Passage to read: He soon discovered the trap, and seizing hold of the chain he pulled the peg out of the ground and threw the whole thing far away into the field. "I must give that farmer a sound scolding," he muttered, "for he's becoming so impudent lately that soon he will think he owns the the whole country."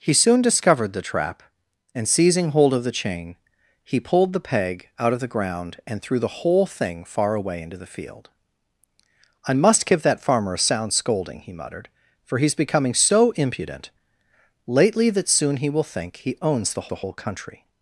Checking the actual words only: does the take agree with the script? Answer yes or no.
yes